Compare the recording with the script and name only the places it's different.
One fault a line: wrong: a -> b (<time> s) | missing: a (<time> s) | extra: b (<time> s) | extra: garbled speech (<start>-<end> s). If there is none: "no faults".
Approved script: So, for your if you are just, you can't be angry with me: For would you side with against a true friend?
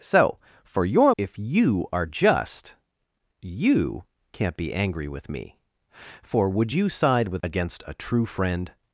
no faults